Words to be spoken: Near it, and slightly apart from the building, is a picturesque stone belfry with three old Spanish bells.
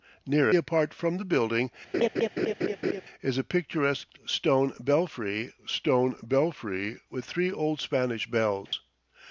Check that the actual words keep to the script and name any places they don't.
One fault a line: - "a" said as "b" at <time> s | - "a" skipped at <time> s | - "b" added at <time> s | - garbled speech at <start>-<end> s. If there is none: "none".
- "it and slightly" skipped at 0.5 s
- "stone belfry" added at 5.6 s